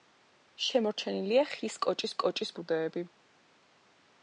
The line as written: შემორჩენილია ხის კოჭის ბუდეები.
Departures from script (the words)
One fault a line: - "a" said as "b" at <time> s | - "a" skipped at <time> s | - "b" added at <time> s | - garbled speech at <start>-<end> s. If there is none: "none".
- "კოჭის" added at 2.2 s